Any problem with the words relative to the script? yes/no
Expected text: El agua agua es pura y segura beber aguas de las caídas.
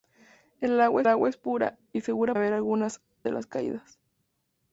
no